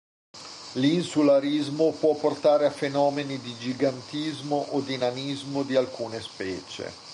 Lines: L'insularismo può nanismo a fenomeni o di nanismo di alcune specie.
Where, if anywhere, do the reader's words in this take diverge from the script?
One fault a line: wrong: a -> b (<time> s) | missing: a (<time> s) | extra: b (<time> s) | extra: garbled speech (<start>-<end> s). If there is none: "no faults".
wrong: nanismo -> portare (2.1 s)
extra: di gigantismo (3.4 s)